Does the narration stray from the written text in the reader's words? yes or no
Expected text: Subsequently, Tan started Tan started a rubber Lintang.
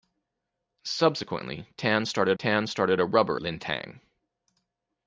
no